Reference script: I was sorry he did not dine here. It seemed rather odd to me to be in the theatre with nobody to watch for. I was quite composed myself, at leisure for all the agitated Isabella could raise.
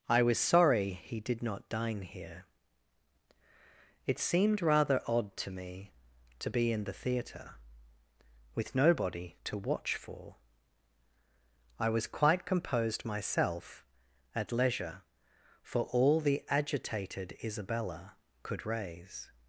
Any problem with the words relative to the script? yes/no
no